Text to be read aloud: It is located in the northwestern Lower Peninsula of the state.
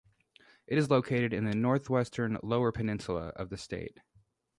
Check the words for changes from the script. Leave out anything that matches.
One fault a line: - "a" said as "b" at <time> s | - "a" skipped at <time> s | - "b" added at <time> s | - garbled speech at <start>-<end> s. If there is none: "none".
none